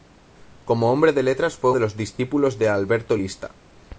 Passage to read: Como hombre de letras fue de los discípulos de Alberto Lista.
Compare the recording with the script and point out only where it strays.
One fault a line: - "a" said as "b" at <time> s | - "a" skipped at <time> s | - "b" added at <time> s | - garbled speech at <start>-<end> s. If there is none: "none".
none